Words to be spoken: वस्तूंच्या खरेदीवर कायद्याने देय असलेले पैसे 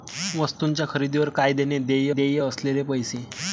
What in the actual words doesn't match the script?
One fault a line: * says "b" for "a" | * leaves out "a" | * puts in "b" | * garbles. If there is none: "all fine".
* puts in "देय"